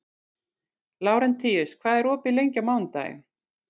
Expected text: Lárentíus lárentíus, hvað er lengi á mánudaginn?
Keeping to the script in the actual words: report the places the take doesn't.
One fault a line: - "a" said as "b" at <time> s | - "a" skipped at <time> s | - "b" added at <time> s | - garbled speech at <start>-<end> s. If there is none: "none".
- "lárentíus" skipped at 1.8 s
- "opið" added at 2.2 s